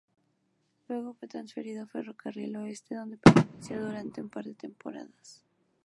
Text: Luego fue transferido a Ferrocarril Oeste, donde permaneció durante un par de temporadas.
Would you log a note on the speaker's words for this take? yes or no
no